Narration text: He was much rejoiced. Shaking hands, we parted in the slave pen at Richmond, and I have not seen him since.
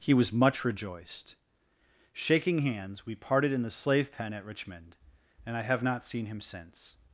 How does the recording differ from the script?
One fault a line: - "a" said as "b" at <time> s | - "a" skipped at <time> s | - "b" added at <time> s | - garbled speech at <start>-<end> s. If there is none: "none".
none